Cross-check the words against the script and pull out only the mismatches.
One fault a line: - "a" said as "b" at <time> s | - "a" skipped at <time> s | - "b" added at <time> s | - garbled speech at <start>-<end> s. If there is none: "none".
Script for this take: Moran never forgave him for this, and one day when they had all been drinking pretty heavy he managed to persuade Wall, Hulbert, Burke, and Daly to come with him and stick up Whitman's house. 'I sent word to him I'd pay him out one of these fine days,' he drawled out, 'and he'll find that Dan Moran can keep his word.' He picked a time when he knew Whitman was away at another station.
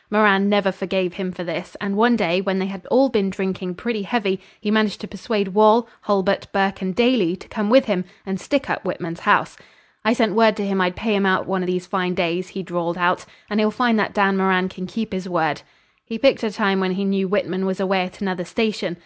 none